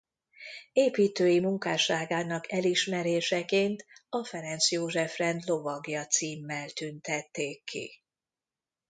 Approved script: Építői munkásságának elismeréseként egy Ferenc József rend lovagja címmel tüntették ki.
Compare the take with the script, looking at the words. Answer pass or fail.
fail